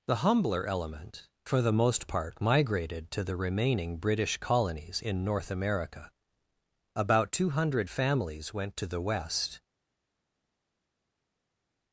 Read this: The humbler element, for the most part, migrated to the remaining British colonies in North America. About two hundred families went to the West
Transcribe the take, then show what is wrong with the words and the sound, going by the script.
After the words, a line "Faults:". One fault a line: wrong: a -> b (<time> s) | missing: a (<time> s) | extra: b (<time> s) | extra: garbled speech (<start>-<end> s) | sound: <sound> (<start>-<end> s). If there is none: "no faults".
The humbler element, for the most part, migrated to the remaining British colonies in North America. About two hundred families went to the West
Faults:
no faults